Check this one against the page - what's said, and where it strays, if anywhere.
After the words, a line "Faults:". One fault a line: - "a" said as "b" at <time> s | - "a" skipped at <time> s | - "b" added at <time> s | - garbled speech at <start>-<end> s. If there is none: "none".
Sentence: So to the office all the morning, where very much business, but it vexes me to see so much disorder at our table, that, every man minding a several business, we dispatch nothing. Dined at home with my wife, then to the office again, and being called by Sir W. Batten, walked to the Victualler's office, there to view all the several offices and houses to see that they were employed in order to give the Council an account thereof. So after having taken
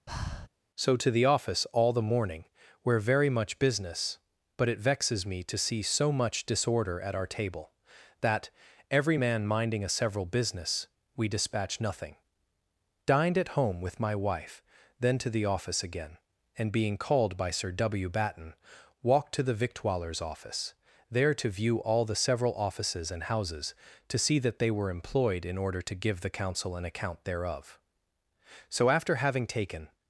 So to the office all the morning, where very much business, but it vexes me to see so much disorder at our table, that, every man minding a several business, we dispatch nothing. Dined at home with my wife, then to the office again, and being called by Sir W. Batten, walked to the Victualler's office, there to view all the several offices and houses to see that they were employed in order to give the Council an account thereof. So after having taken
Faults:
none